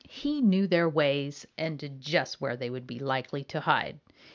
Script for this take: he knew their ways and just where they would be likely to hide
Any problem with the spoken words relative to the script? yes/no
no